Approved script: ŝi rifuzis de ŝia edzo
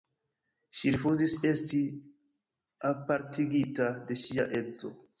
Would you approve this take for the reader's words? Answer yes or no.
no